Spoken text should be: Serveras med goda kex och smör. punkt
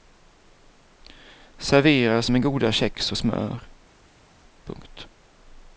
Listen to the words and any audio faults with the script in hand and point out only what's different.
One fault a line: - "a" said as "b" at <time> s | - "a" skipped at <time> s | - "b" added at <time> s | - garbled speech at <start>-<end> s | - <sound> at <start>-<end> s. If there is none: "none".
none